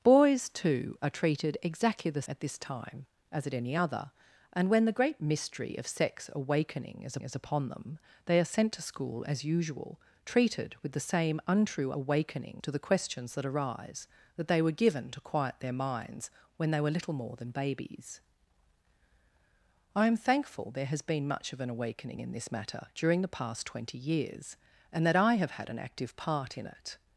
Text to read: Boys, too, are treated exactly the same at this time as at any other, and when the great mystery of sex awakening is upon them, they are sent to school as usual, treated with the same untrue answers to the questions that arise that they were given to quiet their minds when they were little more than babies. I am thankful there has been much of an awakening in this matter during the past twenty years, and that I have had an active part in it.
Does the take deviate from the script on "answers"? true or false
true